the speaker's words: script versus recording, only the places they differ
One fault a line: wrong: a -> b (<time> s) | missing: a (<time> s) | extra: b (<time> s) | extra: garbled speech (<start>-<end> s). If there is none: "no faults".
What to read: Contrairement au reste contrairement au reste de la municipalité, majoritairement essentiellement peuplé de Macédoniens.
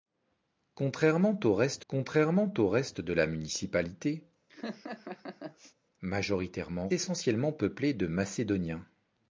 no faults